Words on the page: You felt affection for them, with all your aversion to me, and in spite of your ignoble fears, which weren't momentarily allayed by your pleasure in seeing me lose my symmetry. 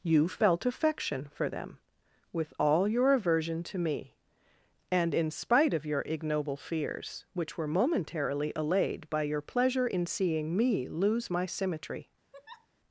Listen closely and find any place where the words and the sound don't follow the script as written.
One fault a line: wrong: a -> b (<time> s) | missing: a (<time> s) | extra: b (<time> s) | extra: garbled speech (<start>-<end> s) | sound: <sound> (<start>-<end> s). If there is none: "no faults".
wrong: weren't -> were (7.6 s)
sound: laugh (12.3-12.7 s)